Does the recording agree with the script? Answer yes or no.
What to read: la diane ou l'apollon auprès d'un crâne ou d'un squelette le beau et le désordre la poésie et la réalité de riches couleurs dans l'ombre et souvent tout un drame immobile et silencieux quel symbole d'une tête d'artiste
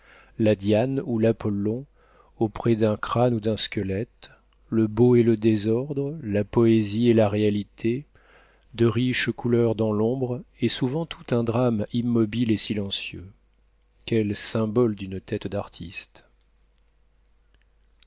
yes